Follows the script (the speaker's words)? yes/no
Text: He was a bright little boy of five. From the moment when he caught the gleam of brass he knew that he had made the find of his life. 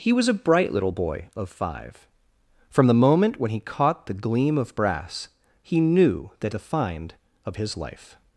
no